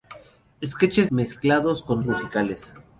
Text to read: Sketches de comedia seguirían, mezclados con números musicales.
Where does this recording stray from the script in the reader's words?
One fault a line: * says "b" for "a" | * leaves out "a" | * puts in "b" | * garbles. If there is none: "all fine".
* leaves out "de comedia seguirían"
* leaves out "números"